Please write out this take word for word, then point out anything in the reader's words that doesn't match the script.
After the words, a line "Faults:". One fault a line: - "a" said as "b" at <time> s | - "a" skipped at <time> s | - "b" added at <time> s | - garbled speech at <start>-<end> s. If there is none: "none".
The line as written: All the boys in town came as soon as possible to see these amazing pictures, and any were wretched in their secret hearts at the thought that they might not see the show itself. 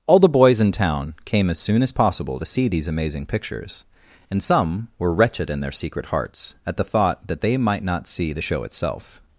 All the boys in town came as soon as possible to see these amazing pictures, and some were wretched in their secret hearts at the thought that they might not see the show itself.
Faults:
- "any" said as "some" at 4.4 s